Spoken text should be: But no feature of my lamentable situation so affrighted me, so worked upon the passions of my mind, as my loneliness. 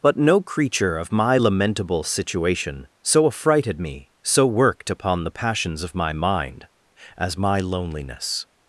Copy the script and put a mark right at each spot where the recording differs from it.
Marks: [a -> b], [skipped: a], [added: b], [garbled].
But no [feature -> creature] of my lamentable situation so affrighted me, so worked upon the passions of my mind, as my loneliness.